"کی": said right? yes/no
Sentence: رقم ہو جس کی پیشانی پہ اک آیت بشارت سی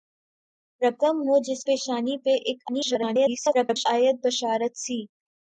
no